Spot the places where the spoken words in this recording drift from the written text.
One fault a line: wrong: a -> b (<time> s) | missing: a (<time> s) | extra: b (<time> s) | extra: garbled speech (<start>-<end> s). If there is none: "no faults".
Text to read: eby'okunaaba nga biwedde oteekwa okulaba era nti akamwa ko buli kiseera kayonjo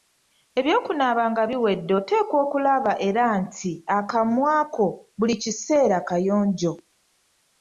no faults